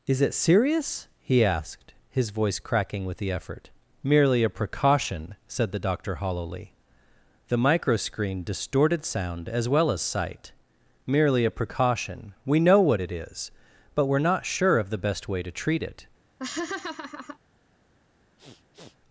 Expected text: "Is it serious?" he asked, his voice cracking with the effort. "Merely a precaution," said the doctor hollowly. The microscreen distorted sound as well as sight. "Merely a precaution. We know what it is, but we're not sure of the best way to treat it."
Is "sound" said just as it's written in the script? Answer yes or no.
yes